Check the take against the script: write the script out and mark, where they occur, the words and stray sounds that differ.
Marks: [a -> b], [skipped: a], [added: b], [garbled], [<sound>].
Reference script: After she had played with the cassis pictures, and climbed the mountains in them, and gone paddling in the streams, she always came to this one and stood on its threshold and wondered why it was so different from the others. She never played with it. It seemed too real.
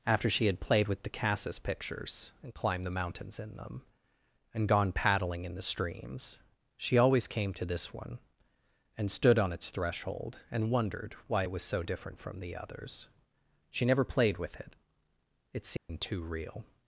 After she had played with the cassis pictures, and climbed the mountains in them, and gone paddling in the streams, she always came to this one and stood on its threshold and wondered why it was so different from the others. She never played with it. It seemed [dropout] too real.